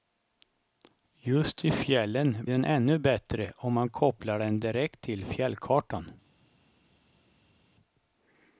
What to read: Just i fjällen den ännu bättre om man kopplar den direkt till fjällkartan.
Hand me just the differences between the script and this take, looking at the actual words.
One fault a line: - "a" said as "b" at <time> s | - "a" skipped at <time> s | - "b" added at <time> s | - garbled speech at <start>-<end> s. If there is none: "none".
none